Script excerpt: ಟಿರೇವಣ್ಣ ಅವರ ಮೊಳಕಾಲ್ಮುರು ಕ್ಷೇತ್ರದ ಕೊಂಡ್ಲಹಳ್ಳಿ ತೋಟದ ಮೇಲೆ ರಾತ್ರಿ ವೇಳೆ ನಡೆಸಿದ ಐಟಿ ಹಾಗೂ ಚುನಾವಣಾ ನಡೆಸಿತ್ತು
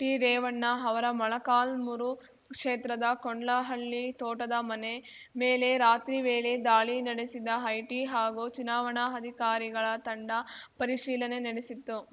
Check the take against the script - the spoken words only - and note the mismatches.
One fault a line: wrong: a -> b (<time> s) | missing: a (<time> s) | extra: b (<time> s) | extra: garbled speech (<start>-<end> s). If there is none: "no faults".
extra: ಮನೆ (4.6 s)
extra: ದಾಳಿ (6.6 s)
extra: ಅಧಿಕಾರಿಗಳ ತಂಡ ಪರಿಶೀಲನೆ (9.2 s)